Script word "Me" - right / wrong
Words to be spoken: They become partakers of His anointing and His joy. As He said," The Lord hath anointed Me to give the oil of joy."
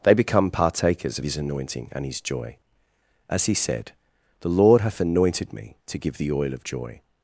right